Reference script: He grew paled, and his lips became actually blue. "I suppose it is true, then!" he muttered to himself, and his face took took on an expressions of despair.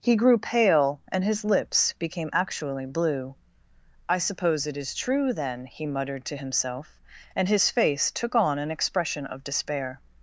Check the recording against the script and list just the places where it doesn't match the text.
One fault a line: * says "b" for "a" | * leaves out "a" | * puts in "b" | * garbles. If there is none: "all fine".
* says "pale" for "paled"
* leaves out "took"
* says "expression" for "expressions"